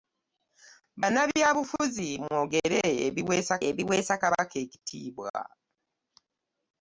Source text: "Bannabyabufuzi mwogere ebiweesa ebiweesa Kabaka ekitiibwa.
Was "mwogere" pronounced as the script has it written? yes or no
yes